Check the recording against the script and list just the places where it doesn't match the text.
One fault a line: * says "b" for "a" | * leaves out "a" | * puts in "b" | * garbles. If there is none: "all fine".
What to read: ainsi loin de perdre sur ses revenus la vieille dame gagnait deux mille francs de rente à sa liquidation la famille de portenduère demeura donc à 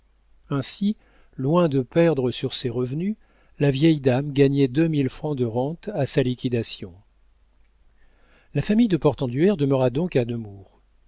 all fine